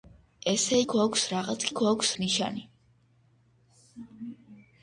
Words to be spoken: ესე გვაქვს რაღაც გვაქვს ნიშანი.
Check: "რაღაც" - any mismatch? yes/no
no